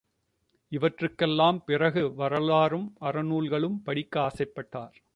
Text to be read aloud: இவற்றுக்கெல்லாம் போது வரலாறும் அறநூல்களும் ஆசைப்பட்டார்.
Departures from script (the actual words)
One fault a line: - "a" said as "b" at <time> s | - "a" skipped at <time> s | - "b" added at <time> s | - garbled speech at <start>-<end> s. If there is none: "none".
- "போது" said as "பிறகு" at 1.7 s
- "படிக்க" added at 3.8 s